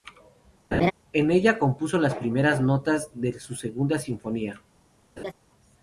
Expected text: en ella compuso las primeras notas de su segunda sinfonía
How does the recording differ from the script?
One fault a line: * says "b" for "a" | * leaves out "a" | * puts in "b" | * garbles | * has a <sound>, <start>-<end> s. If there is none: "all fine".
* has a laugh, 0.7-0.9 s
* has a laugh, 5.2-5.3 s